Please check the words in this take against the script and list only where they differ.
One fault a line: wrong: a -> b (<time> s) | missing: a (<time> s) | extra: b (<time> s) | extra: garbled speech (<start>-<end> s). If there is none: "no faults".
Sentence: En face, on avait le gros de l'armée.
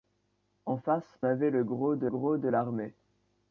missing: on (1.2 s)
extra: gros de (2.1 s)